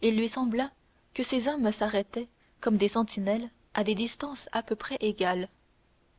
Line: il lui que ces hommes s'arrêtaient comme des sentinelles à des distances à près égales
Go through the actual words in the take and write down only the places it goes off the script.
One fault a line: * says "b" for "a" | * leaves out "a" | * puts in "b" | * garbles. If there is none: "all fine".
* puts in "sembla"
* puts in "peu"